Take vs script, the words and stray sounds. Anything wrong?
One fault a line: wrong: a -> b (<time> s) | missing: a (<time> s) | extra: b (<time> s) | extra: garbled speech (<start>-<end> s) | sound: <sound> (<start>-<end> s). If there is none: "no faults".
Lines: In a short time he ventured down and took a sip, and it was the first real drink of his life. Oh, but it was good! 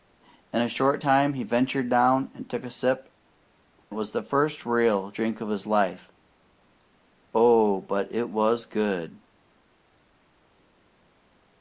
missing: and (3.1 s)